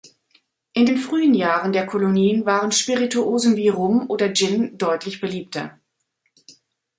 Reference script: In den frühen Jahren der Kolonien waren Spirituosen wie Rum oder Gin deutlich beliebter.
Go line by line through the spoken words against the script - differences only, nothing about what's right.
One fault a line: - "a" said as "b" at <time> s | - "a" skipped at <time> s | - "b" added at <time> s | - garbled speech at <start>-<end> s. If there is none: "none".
none